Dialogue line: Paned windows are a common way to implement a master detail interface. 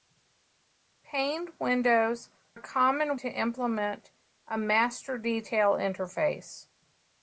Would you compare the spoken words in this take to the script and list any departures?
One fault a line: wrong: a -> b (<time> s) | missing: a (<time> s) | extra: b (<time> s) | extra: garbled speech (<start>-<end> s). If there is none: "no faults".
missing: are (2.3 s)
missing: way (3.2 s)